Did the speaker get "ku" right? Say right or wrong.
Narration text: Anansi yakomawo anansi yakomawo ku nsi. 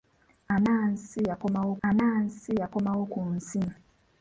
right